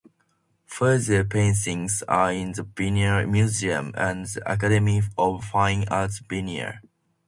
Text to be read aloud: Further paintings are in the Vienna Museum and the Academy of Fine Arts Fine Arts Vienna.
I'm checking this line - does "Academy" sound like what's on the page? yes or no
yes